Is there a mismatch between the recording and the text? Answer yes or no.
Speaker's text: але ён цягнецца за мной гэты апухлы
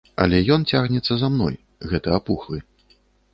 no